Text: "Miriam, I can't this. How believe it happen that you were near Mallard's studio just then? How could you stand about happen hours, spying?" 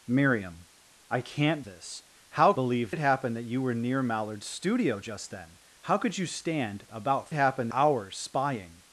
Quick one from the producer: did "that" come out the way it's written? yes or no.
yes